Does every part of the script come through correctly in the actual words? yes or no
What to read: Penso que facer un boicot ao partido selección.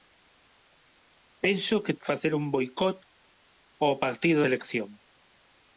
yes